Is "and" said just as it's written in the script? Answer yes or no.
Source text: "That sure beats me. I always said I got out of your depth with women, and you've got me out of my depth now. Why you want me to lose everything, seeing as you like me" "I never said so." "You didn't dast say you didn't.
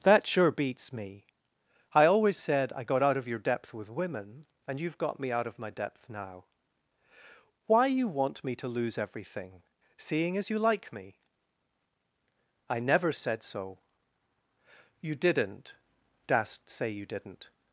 yes